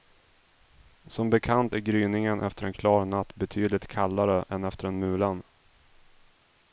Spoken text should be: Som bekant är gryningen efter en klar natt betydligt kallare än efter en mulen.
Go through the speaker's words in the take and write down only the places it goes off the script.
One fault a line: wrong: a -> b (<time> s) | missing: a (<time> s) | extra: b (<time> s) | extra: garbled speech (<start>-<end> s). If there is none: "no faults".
no faults